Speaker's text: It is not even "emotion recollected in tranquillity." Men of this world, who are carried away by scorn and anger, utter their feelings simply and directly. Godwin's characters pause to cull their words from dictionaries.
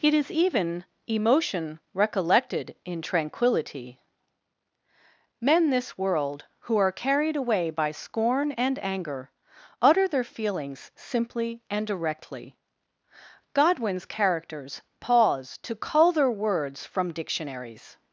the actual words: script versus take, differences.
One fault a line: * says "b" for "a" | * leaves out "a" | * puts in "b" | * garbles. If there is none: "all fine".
* leaves out "not"
* leaves out "of"